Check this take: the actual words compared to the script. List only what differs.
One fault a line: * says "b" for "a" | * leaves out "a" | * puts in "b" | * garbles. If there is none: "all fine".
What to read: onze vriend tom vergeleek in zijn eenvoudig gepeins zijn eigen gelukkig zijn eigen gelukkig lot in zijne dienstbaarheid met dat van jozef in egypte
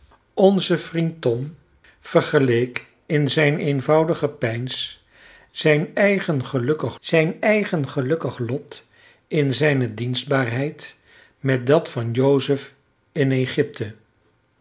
all fine